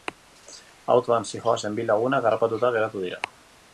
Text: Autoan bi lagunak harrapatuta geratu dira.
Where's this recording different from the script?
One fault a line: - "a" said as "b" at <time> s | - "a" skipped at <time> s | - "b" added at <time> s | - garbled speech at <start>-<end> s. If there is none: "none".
- "zihoazen" added at 1.3 s